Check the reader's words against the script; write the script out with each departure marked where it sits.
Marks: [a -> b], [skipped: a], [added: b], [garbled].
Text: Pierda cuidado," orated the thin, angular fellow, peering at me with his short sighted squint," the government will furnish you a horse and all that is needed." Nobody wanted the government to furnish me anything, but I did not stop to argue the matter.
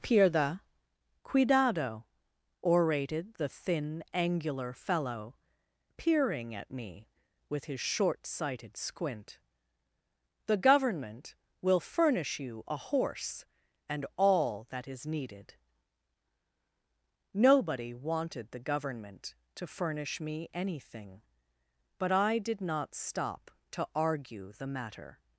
Pierda cuidado," orated the thin, angular fellow, peering at me with his short sighted squint," the government will furnish you a horse and all that is needed." Nobody wanted the government to furnish me anything, but I did not stop to argue the matter.